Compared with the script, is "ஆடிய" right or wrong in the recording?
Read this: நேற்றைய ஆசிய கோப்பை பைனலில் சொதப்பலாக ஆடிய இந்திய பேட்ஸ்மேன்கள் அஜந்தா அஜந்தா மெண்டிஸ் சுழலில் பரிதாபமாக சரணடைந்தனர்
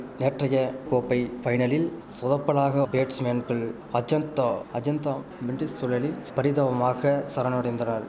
wrong